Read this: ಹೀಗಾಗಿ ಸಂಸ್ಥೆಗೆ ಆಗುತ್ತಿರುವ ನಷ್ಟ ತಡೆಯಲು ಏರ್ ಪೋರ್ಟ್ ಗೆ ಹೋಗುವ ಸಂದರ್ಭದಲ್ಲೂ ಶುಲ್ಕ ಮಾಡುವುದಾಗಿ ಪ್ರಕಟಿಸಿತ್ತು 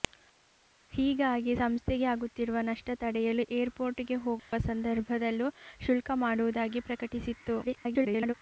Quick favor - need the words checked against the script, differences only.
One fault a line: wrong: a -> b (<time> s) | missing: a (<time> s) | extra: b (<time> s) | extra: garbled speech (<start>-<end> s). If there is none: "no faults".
extra: garbled speech (7.6-8.3 s)